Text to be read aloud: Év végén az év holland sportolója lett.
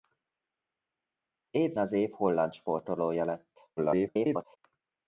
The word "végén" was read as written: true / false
false